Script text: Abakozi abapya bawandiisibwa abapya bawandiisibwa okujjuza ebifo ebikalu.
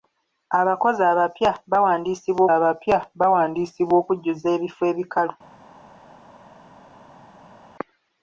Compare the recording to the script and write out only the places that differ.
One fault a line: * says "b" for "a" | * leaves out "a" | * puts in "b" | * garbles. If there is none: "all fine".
all fine